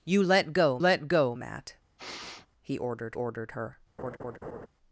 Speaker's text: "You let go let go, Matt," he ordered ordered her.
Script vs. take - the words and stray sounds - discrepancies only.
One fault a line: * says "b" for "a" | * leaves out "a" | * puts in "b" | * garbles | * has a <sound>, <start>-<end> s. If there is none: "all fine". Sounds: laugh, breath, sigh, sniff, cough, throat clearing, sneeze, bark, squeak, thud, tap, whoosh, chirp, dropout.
* has a sniff, 2.0-2.5 s
* has a laugh, 4.0-4.7 s